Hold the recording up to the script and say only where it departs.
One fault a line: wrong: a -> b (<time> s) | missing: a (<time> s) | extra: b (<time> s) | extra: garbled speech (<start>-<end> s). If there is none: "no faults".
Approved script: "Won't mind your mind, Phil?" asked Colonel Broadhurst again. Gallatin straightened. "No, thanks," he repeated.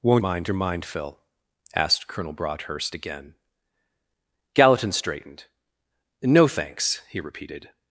no faults